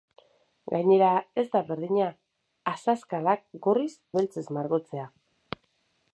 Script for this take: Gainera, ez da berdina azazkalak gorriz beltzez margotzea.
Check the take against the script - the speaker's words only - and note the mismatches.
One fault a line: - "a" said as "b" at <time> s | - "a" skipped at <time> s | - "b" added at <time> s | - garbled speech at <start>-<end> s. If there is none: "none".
none